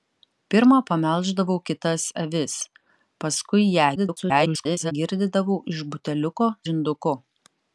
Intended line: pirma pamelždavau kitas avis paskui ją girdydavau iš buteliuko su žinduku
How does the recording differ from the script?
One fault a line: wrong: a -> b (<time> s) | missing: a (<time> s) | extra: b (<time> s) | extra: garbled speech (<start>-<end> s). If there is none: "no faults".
extra: garbled speech (4.0-4.9 s)
missing: su (6.5 s)